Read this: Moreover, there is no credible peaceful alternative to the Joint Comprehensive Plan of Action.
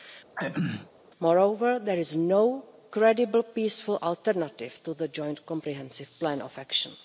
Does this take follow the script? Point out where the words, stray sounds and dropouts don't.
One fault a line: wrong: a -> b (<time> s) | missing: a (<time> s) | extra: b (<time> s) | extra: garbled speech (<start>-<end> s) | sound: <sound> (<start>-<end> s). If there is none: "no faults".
sound: throat clearing (0.4-0.9 s)